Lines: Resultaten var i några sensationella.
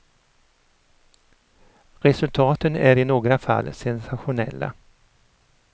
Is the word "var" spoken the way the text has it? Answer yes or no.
no